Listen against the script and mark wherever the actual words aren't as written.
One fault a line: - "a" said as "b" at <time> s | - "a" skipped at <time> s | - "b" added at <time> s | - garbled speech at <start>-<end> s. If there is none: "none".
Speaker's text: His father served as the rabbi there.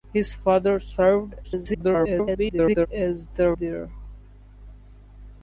- garbled speech at 1.4-2.9 s
- "rabbi" skipped at 3.5 s